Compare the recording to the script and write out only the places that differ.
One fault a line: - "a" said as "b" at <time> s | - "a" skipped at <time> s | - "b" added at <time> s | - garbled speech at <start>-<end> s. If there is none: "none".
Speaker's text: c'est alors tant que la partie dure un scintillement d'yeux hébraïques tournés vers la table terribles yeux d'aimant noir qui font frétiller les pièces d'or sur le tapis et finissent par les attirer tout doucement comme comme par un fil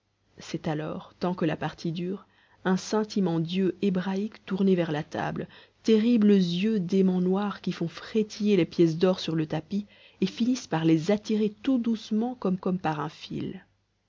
none